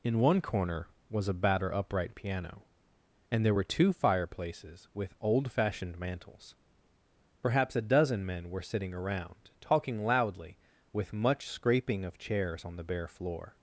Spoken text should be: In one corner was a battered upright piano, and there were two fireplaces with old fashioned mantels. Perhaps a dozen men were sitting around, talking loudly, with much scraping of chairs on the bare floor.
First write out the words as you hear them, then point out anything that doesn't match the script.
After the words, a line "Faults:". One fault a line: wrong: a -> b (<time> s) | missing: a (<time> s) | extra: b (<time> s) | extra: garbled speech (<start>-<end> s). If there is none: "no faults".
In one corner was a batter upright piano, and there were two fireplaces with old fashioned mantels. Perhaps a dozen men were sitting around, talking loudly, with much scraping of chairs on the bare floor.
Faults:
wrong: battered -> batter (1.3 s)